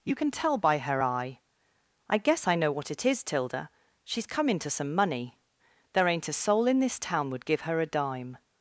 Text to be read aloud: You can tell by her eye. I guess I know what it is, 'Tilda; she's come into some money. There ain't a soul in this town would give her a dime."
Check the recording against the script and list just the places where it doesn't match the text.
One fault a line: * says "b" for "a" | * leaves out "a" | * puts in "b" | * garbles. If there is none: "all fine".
all fine